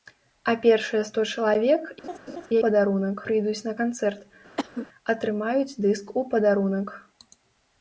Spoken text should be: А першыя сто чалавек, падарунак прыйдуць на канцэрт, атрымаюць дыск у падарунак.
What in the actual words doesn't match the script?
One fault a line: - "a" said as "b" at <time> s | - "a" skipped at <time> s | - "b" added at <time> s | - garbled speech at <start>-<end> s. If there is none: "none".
none